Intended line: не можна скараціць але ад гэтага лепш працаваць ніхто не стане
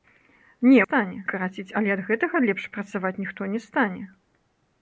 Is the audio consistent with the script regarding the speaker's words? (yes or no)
no